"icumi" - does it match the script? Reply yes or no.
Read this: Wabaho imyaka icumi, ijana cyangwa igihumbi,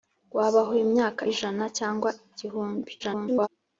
no